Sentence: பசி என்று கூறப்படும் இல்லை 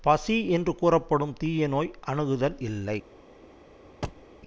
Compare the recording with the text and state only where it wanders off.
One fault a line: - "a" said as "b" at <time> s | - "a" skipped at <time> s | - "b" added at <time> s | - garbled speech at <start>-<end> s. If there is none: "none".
- "தீய நோய் அணுகுதல்" added at 1.4 s